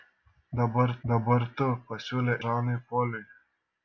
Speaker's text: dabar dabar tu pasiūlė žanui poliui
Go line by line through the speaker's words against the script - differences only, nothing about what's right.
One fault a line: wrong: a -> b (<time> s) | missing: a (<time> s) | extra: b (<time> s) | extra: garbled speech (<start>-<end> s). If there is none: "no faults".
no faults